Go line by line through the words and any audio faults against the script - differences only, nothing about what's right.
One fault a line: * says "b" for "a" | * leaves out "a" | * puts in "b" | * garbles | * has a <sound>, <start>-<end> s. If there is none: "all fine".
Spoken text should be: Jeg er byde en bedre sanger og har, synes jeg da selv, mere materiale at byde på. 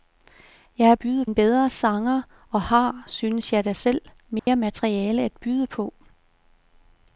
* has a dropout, 4.4-4.5 s